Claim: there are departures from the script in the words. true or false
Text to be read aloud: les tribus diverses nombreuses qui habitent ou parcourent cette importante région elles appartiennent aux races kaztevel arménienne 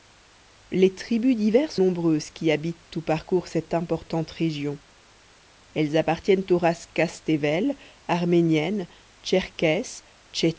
false